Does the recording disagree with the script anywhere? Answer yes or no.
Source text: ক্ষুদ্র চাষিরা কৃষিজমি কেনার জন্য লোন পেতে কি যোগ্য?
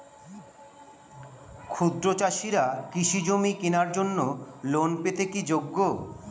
no